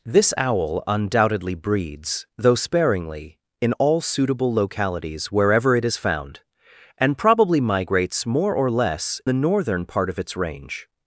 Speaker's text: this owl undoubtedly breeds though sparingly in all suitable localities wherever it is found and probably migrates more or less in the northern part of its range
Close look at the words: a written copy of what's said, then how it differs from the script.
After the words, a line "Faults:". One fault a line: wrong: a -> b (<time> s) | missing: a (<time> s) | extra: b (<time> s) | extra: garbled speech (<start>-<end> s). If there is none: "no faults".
this owl undoubtedly breeds though sparingly in all suitable localities wherever it is found and probably migrates more or less the northern part of its range
Faults:
missing: in (9.2 s)